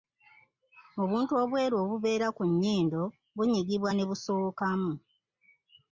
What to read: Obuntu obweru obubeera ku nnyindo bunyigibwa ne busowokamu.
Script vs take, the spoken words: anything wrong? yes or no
no